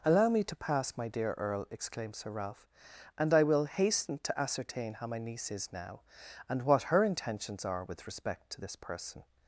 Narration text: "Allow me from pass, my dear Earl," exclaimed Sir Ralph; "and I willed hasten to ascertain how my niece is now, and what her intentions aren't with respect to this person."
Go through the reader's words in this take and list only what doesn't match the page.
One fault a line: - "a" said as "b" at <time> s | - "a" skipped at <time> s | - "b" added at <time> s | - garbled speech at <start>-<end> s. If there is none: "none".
- "from" said as "to" at 0.5 s
- "willed" said as "will" at 3.4 s
- "aren't" said as "are" at 7.7 s